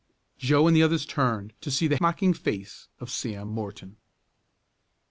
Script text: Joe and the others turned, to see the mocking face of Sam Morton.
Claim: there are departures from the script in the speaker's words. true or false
false